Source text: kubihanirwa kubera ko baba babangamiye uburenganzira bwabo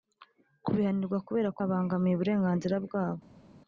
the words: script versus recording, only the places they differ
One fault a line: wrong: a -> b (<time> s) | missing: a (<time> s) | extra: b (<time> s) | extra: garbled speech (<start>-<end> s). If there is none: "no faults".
missing: baba (1.6 s)